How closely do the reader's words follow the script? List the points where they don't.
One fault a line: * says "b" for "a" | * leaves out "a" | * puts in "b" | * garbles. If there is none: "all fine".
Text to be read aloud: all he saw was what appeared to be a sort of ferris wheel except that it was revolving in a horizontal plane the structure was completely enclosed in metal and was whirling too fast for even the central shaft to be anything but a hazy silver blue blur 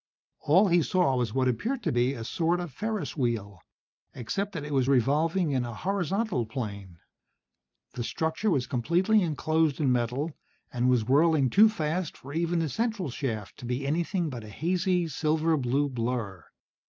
all fine